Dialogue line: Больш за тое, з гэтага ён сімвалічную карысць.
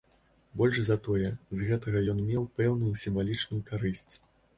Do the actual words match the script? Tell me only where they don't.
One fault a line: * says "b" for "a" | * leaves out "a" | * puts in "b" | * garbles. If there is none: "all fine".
* puts in "меў пэўную"